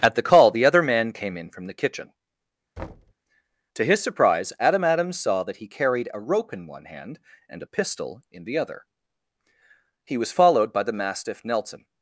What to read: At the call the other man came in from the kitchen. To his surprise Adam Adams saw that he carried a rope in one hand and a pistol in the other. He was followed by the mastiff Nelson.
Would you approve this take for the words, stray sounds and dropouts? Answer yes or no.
no